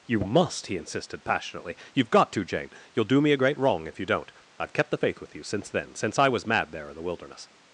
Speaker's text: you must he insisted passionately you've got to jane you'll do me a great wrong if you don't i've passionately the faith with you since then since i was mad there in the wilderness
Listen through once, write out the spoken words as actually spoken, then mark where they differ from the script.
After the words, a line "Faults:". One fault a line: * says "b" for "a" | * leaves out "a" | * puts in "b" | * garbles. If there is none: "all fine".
you must he insisted passionately you've got to jane you'll do me a great wrong if you don't i've kept the faith with you since then since i was mad there in the wilderness
Faults:
* says "kept" for "passionately"